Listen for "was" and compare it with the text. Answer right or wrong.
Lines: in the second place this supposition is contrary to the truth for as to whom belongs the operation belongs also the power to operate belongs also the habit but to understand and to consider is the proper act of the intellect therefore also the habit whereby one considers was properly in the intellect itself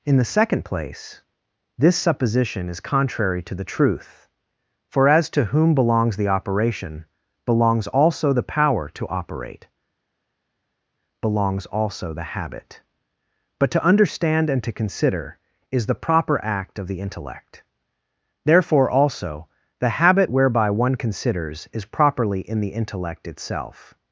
wrong